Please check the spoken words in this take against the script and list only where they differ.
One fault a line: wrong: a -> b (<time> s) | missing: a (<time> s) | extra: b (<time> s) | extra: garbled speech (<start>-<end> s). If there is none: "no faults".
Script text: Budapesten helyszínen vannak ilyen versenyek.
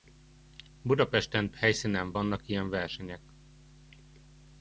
no faults